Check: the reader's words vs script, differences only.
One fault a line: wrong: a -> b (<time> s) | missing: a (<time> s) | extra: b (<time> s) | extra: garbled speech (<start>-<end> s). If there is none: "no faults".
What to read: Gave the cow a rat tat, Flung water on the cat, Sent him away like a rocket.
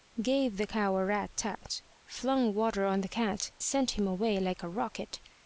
no faults